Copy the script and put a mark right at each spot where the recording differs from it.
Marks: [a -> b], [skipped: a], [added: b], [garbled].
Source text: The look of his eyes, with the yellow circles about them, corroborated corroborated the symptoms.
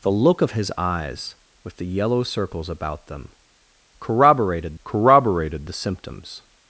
The look of his eyes, with the yellow circles about them, corroborated corroborated the symptoms.